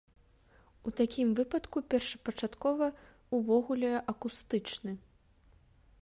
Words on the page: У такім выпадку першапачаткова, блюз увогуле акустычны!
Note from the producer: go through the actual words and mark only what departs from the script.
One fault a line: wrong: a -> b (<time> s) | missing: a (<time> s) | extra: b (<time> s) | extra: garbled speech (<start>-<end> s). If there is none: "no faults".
missing: блюз (2.9 s)